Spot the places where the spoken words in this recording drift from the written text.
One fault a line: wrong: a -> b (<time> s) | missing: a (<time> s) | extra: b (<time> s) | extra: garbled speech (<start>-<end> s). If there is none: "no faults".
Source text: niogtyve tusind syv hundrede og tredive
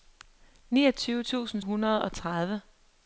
missing: syv (1.6 s)